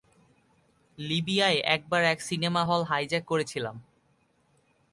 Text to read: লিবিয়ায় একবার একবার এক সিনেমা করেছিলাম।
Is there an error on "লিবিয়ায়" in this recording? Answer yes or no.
no